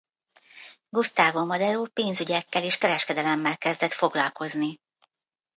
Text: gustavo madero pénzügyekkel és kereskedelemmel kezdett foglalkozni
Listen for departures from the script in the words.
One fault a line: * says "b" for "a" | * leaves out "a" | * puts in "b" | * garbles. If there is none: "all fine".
all fine